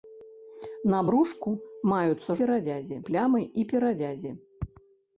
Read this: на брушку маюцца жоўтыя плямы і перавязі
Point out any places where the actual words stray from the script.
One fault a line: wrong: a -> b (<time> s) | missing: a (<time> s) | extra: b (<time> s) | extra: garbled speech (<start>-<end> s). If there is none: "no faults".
wrong: жоўтыя -> перавязі (2.4 s)